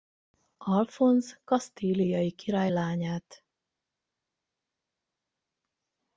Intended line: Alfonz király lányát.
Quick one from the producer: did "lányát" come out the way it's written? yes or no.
yes